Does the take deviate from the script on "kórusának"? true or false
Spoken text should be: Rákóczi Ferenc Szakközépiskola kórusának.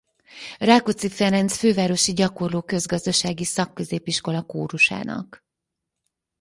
false